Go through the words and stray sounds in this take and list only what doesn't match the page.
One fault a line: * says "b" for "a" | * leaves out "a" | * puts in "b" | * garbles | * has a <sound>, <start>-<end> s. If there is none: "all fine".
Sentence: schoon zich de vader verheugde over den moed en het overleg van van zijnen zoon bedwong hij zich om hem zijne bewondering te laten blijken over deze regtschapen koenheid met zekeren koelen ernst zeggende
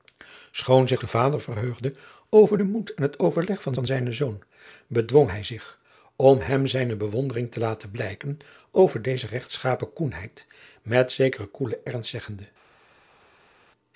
all fine